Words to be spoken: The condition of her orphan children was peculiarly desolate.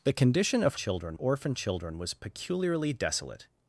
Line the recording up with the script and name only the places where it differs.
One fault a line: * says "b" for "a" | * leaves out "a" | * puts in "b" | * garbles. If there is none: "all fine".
* says "children" for "her"